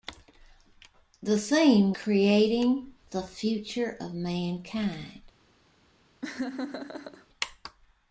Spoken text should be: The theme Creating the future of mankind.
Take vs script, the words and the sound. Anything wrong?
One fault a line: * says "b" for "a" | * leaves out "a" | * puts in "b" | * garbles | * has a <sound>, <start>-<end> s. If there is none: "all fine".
* has a laugh, 6.2-7.3 s